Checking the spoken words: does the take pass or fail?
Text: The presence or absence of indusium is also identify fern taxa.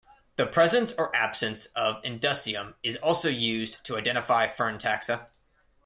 fail